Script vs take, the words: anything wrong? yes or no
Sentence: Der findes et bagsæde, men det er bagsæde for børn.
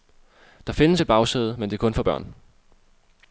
yes